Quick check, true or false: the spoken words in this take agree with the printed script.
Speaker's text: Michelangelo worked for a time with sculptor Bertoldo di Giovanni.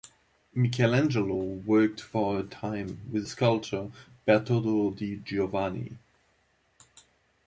true